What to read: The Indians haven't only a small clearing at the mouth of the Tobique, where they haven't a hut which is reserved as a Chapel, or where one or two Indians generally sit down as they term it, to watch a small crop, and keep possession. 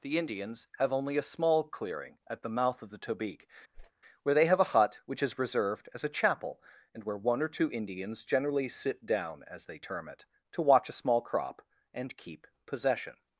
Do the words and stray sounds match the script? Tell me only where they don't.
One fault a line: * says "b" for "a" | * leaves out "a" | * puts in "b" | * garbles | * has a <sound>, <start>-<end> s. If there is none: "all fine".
* says "have" for "haven't"
* has a whoosh, 3.7-3.9 s
* says "have" for "haven't"
* says "and" for "or"